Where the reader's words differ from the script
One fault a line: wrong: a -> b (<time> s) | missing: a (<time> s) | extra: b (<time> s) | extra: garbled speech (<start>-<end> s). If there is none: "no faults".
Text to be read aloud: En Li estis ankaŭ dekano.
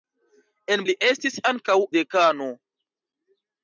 no faults